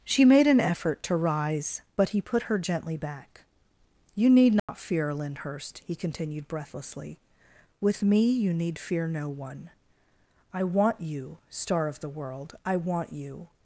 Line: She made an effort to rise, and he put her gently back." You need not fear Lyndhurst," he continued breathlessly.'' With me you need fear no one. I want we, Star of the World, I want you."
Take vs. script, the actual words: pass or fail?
fail